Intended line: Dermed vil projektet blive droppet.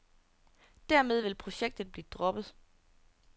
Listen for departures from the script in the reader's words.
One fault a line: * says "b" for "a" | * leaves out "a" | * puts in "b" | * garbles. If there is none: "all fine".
all fine